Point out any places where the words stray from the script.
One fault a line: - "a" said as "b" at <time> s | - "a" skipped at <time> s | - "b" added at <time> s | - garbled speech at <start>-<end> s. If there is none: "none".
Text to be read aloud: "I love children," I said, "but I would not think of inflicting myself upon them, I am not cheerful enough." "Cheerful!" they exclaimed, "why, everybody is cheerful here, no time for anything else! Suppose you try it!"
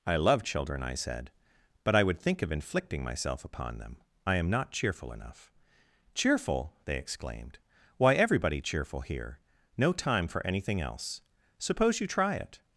- "not" skipped at 2.2 s
- "is" skipped at 8.6 s